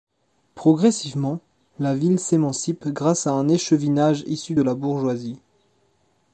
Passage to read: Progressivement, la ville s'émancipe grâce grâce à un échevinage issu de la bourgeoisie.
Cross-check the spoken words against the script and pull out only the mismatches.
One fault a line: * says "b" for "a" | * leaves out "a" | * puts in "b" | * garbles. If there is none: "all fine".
* leaves out "grâce"